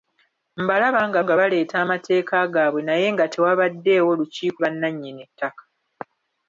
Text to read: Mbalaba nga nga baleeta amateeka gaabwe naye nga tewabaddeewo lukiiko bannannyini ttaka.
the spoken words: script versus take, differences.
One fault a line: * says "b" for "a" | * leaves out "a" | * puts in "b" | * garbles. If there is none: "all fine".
all fine